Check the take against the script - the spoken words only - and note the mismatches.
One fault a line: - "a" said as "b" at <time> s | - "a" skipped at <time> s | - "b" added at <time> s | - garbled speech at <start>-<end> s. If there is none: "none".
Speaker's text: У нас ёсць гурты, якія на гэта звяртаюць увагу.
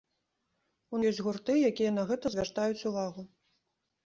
- "нас" skipped at 1.0 s